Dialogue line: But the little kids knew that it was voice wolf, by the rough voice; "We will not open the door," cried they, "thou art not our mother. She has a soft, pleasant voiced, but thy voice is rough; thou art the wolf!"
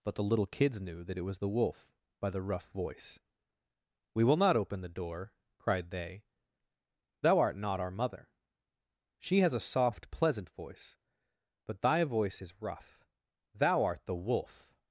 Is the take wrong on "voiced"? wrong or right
wrong